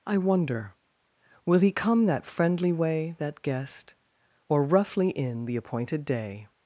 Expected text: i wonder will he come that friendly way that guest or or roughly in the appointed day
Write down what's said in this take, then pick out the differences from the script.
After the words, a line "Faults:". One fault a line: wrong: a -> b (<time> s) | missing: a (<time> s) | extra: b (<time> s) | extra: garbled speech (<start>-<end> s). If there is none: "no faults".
i wonder will he come that friendly way that guest or roughly in the appointed day
Faults:
missing: or (4.6 s)